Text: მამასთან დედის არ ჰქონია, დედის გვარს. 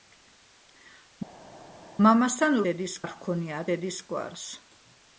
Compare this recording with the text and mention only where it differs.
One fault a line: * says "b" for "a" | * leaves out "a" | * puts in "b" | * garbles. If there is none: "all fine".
all fine